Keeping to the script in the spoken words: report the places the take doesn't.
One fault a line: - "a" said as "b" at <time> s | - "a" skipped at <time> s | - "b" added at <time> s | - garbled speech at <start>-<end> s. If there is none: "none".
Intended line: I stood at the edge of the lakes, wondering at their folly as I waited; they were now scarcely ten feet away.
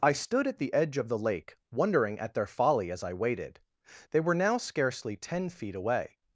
- "lakes" said as "lake" at 1.2 s